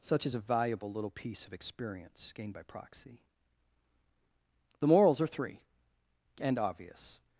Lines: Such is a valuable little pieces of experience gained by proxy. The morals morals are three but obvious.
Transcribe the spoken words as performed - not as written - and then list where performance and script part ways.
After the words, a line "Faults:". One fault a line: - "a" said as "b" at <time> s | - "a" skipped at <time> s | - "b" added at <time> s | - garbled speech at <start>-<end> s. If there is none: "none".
Such is a valuable little piece of experience gained by proxy. The morals are three and obvious.
Faults:
- "pieces" said as "piece" at 1.1 s
- "morals" skipped at 5.2 s
- "but" said as "and" at 6.4 s